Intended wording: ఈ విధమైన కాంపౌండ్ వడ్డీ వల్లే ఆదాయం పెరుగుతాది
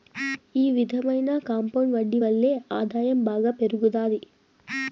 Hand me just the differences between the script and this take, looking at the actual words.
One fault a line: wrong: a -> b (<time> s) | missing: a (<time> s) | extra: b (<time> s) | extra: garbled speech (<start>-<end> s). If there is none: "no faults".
extra: బాగా (3.2 s)